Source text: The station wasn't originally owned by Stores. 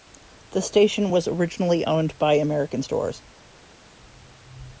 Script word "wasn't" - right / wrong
wrong